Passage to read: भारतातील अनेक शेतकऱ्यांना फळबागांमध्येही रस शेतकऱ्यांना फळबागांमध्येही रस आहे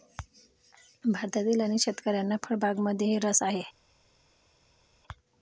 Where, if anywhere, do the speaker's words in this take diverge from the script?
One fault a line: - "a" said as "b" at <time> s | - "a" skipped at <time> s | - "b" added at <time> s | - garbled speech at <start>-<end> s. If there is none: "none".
- "शेतकऱ्यांना फळबागांमध्येही रस" skipped at 3.4 s